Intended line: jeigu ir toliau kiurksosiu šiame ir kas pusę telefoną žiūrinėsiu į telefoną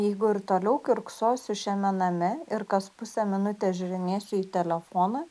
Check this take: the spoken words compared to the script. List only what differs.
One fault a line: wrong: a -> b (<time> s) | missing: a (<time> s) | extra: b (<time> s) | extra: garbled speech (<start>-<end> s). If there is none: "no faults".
extra: name (2.0 s)
wrong: telefoną -> minutės (3.3 s)